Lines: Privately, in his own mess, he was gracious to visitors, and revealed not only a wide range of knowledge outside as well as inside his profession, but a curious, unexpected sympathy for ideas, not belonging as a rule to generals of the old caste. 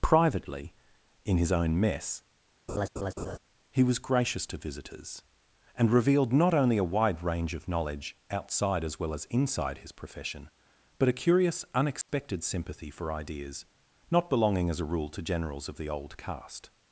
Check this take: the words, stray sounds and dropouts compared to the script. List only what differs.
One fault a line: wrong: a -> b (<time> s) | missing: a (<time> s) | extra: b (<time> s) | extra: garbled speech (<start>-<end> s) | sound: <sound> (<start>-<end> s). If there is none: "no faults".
sound: laugh (2.7-3.4 s)
sound: dropout (12.0-12.1 s)